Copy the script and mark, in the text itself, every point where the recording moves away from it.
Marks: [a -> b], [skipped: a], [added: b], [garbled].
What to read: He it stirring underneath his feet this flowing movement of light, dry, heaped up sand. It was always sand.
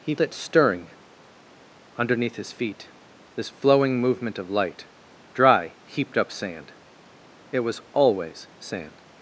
He it stirring underneath his feet this flowing movement of light, dry, heaped up sand. It was always sand.